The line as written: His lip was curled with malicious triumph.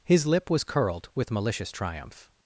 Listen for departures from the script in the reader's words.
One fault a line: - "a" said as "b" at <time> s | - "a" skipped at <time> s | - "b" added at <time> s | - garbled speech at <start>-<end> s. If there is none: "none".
none